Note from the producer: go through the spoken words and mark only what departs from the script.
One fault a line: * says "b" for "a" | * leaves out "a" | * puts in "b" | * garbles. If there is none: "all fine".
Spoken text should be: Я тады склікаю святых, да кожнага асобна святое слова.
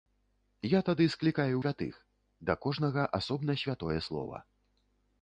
all fine